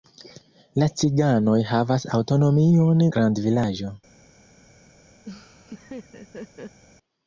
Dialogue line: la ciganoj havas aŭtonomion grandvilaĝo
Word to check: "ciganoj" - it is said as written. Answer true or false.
true